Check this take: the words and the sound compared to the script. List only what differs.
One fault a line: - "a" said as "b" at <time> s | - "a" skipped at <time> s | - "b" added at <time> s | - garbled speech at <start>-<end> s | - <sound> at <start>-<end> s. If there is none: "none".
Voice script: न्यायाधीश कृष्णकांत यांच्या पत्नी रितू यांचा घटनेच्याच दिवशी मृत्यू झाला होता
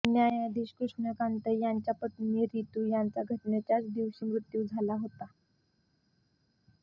none